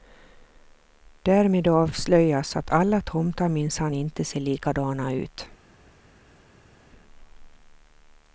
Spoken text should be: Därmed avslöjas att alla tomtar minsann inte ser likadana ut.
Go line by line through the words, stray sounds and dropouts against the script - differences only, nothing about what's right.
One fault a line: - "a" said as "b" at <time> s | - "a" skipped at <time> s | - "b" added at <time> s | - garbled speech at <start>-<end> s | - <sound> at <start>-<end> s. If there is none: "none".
none